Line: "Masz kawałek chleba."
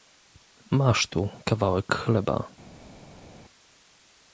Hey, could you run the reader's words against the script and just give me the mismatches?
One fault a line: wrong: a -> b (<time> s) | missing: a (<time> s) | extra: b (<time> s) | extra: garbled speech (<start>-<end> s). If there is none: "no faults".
extra: tu (1.1 s)